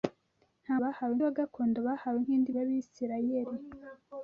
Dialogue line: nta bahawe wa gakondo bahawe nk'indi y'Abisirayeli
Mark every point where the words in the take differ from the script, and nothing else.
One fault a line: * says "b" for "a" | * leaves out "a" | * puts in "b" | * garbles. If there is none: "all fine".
all fine